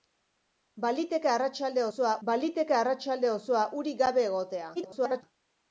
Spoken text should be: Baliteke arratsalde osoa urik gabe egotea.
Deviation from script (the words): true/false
true